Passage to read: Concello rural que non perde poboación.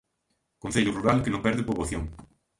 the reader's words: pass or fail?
pass